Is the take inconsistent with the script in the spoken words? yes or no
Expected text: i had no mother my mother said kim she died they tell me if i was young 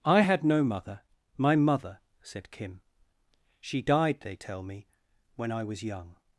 yes